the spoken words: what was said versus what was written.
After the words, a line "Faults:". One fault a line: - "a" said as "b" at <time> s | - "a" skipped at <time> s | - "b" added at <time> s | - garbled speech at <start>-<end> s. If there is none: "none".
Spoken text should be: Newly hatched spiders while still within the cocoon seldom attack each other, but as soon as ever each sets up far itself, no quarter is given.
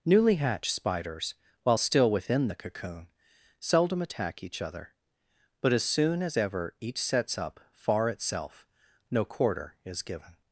Newly hatched spiders while still within the cocoon seldom attack each other, but as soon as ever each sets up far itself, no quarter is given.
Faults:
none